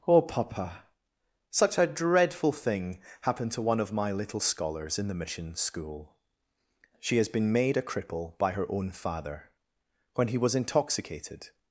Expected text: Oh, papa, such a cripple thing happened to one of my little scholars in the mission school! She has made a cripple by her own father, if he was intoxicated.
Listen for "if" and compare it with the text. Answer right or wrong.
wrong